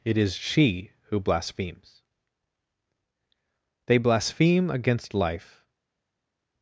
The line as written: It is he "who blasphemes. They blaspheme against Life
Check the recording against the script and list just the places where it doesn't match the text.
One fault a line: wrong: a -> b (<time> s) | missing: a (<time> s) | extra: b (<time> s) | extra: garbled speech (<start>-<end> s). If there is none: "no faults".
wrong: he -> she (0.3 s)